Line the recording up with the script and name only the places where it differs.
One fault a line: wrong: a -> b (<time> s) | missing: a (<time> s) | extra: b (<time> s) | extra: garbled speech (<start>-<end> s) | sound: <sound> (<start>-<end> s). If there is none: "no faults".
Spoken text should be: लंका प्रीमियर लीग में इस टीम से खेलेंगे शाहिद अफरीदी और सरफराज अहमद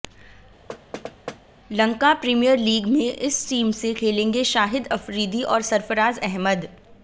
sound: thud (0.7-1.4 s)